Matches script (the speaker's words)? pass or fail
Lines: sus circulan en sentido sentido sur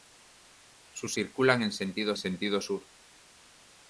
pass